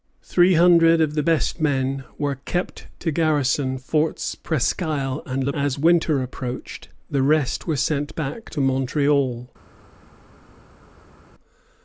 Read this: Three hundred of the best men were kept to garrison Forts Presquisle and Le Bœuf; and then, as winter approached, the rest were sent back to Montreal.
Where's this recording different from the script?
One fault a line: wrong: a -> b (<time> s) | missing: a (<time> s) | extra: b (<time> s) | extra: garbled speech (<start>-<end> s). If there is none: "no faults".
missing: Bœuf and then (5.5 s)